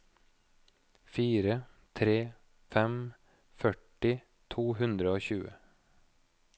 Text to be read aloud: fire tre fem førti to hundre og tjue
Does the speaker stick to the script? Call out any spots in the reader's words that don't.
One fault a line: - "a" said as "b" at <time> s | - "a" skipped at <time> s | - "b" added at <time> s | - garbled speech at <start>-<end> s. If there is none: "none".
none